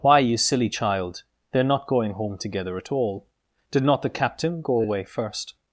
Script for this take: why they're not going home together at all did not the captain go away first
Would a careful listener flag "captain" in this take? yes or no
no